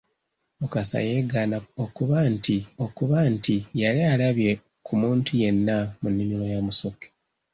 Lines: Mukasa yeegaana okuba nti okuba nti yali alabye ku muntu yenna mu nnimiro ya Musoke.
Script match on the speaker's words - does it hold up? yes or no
yes